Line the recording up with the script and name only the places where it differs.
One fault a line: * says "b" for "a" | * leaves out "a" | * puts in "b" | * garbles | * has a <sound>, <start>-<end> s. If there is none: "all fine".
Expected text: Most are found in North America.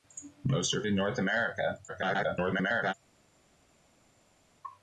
* leaves out "found"
* garbles